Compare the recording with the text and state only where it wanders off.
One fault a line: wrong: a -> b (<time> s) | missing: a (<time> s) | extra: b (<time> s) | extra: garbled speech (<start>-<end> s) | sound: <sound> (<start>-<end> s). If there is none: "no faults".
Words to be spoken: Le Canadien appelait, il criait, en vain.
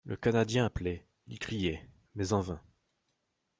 extra: mais (2.1 s)